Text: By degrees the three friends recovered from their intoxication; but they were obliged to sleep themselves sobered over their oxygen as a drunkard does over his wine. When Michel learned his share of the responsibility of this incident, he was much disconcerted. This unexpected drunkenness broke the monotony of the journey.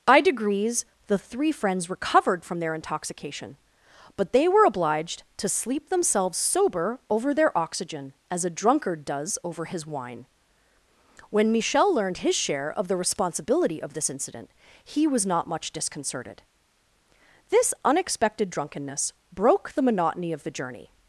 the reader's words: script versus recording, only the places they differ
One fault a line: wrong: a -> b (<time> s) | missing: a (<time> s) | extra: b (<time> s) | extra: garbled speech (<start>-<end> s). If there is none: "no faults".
wrong: sobered -> sober (6.4 s)
extra: not (15.3 s)